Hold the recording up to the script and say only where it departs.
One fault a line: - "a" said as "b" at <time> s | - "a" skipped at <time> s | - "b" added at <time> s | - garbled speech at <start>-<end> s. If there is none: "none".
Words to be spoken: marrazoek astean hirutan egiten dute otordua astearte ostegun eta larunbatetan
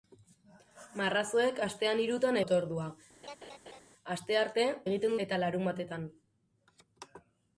- "egiten dute" skipped at 2.4 s
- "ostegun" said as "egiten" at 4.8 s